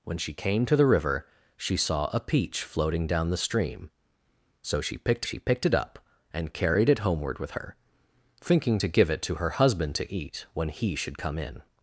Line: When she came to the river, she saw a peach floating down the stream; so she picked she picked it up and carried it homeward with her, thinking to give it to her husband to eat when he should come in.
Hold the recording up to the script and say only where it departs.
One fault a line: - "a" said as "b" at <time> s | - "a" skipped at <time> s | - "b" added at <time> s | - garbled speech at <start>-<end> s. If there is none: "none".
none